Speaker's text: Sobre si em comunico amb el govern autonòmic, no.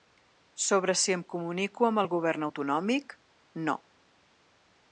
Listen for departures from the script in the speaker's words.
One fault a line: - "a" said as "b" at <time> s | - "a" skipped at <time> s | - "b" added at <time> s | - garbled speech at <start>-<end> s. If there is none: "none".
none